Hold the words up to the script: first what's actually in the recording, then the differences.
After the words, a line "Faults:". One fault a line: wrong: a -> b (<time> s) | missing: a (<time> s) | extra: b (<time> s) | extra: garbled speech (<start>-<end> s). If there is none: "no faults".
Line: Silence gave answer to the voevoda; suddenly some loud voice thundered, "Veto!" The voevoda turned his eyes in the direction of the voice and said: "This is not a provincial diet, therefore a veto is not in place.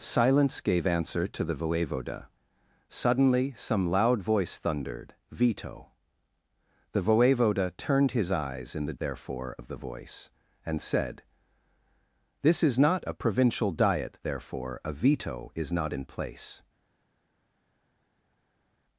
Silence gave answer to the voevoda; suddenly some loud voice thundered, "Veto!" The voevoda turned his eyes in the therefore of the voice and said: "This is not a provincial diet, therefore a veto is not in place.
Faults:
wrong: direction -> therefore (9.0 s)